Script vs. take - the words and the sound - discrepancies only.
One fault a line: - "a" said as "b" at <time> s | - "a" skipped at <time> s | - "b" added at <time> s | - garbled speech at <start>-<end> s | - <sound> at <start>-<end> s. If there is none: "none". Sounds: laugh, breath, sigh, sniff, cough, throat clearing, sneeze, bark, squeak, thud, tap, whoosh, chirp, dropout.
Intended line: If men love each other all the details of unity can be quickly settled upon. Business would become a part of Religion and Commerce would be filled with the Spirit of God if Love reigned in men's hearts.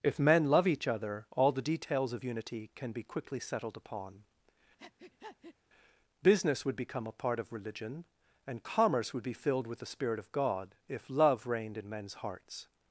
- breath at 4.8-5.6 s